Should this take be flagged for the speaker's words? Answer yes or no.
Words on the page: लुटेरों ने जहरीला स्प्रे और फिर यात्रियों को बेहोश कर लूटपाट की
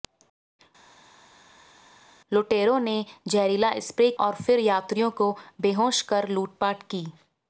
no